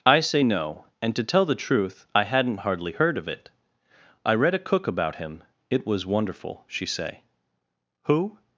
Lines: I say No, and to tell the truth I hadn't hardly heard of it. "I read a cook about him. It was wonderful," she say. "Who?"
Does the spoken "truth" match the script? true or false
true